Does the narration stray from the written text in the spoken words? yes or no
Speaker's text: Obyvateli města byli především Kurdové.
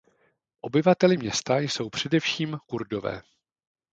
yes